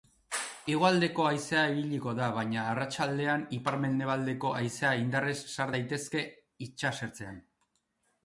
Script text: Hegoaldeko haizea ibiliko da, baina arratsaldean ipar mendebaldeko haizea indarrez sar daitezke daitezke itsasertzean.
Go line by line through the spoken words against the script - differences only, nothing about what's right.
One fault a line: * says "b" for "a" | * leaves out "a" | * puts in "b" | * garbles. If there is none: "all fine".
* leaves out "daitezke"